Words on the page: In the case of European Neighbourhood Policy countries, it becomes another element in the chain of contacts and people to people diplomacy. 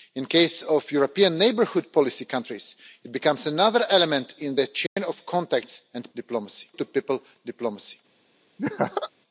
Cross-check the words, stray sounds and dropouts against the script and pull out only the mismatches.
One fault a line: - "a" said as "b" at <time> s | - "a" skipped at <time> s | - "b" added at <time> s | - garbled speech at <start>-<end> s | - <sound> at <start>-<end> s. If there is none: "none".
- dropout at 4.9-5.0 s
- "people" said as "diplomacy" at 6.1 s
- laugh at 8.6-9.1 s